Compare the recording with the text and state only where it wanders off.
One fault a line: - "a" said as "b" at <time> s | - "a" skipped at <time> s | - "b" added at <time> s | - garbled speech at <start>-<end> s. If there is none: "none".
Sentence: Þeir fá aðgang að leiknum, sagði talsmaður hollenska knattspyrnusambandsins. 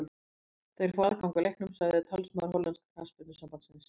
none